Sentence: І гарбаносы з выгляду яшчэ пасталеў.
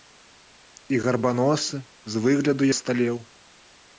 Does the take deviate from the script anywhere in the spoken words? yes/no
yes